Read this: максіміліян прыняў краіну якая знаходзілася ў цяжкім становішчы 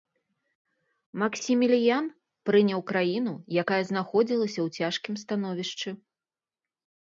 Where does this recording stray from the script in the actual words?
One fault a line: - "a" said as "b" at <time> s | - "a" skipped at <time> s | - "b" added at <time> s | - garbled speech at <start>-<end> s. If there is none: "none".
none